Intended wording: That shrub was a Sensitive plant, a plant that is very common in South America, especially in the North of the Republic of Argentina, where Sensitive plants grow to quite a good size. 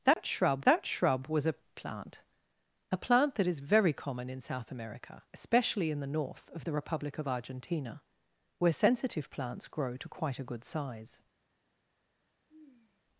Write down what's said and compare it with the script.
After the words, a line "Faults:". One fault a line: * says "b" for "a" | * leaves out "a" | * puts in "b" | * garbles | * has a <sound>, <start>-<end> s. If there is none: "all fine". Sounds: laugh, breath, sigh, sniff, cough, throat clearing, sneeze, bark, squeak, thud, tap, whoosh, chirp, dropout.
That shrub that shrub was a Plant, a plant that is very common in South America, especially in the North of the Republic of Argentina, where Sensitive plants grow to quite a good size.
Faults:
* has a dropout, 0.1-0.2 s
* puts in "that shrub"
* leaves out "Sensitive"
* has a sigh, 12.5-13.0 s